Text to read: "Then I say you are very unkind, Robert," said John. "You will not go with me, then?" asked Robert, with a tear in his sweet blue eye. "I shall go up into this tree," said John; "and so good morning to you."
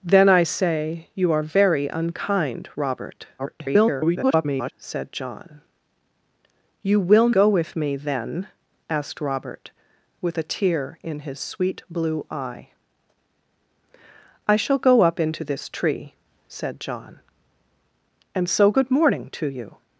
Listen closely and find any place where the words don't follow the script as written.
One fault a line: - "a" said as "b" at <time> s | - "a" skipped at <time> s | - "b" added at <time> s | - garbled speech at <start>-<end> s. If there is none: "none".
- garbled speech at 3.4-4.7 s
- "not" skipped at 7.3 s